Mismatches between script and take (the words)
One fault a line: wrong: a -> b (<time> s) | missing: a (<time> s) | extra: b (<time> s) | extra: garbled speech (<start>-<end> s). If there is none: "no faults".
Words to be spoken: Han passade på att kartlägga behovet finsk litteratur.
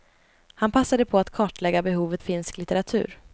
no faults